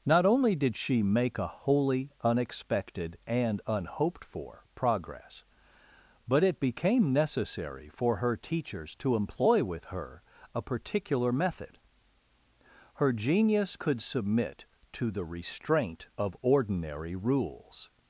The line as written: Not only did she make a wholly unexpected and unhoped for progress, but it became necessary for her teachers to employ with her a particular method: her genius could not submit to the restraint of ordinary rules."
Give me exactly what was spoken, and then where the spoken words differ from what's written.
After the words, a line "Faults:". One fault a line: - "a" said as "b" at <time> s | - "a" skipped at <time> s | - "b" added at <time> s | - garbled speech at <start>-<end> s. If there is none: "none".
Not only did she make a wholly unexpected and unhoped for progress, but it became necessary for her teachers to employ with her a particular method: her genius could submit to the restraint of ordinary rules."
Faults:
- "not" skipped at 14.0 s